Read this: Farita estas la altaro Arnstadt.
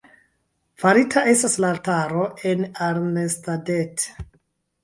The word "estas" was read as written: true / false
true